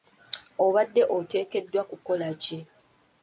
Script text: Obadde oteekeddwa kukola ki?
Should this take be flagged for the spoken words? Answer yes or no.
no